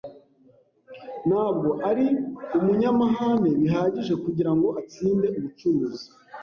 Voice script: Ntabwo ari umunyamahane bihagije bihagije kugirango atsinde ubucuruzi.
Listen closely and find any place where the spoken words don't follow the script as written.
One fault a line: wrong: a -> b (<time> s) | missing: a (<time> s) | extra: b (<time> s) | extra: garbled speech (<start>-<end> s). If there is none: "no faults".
missing: bihagije (4.1 s)